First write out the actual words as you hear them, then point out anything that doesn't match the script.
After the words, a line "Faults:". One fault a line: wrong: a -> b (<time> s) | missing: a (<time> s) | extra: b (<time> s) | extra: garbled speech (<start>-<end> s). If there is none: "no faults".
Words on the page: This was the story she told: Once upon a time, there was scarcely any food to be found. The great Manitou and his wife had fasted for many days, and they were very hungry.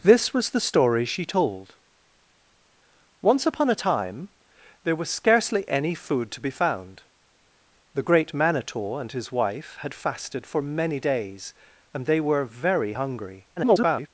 This was the story she told: Once upon a time, there was scarcely any food to be found. The great Manitou and his wife had fasted for many days, and they were very hungry. [garbled]
Faults:
extra: garbled speech (13.6-14.1 s)